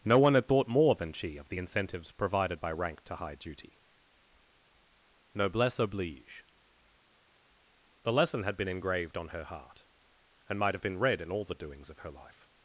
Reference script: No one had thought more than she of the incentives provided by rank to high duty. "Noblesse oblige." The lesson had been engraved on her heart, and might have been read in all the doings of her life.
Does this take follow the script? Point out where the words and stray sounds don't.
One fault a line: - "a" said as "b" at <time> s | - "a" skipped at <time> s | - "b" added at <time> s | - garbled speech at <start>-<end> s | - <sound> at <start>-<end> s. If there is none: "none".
none